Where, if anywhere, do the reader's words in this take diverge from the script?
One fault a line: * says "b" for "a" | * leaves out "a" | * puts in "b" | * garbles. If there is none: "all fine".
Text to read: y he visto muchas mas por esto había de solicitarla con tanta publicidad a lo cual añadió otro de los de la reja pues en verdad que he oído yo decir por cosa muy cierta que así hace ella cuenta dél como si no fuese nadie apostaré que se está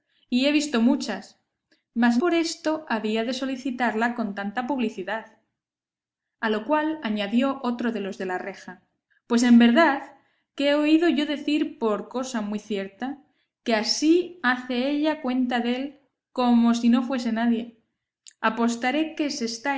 all fine